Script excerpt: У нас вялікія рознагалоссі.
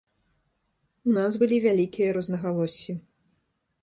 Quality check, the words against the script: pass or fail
fail